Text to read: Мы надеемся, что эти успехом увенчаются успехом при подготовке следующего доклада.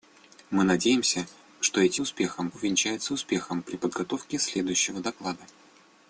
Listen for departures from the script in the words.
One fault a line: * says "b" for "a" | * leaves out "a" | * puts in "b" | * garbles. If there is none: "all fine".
all fine